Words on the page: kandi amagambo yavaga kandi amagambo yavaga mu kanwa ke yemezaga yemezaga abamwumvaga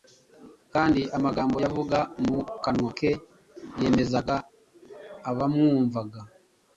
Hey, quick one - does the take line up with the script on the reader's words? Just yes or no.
no